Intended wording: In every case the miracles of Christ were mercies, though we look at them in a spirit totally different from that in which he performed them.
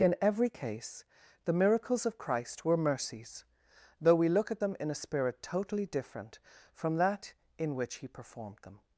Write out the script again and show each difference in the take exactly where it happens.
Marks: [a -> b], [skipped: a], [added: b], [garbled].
In every case the miracles of Christ were mercies, though we look at them in a spirit totally different from that in which he performed them.